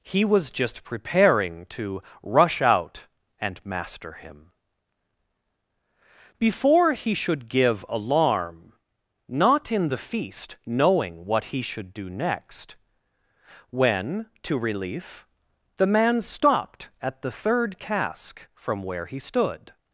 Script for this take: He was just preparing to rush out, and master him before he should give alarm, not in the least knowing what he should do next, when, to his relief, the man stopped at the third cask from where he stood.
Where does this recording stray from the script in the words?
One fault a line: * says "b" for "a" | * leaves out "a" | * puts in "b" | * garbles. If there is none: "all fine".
* says "feast" for "least"
* leaves out "his"